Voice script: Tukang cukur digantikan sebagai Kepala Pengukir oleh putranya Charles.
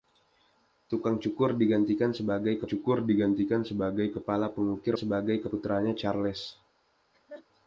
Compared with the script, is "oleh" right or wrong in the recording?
wrong